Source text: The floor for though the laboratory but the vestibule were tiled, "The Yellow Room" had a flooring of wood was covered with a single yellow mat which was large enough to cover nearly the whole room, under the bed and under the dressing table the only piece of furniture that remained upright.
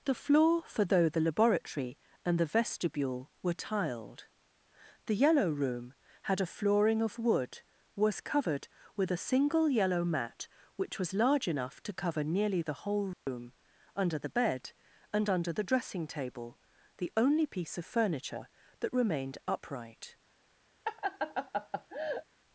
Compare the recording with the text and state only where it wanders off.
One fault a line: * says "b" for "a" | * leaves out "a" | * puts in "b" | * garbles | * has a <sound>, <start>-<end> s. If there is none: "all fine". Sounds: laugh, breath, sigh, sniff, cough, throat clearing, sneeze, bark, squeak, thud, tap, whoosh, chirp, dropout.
* says "and" for "but"
* has a dropout, 13.1-13.3 s
* has a laugh, 20.8-22.2 s